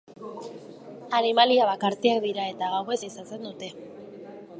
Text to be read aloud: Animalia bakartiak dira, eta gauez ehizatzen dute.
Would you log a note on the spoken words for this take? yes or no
no